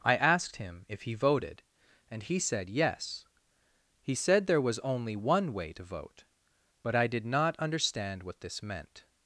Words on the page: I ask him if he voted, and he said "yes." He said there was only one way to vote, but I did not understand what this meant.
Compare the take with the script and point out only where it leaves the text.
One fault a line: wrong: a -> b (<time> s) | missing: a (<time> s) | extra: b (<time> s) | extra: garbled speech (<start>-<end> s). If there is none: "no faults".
wrong: ask -> asked (0.1 s)